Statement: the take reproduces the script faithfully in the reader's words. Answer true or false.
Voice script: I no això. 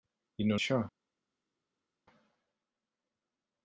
true